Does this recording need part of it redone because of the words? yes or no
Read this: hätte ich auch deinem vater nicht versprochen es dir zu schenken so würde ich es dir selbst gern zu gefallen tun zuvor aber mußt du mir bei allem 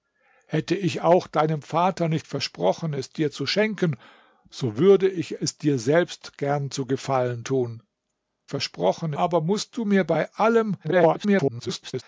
yes